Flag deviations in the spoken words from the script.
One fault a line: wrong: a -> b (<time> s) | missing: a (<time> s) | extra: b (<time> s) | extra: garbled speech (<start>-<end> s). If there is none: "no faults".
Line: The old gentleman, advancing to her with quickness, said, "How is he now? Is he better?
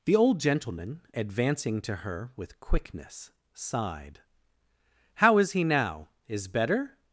wrong: said -> sighed (3.5 s)
missing: he (6.5 s)